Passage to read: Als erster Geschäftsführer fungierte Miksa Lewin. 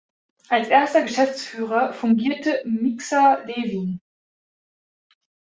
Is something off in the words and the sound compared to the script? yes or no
no